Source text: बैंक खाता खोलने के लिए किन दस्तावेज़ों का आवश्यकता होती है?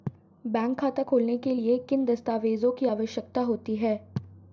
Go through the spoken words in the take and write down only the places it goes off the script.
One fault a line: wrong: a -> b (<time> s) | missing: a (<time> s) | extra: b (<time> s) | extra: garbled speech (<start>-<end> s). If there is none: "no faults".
wrong: का -> की (2.7 s)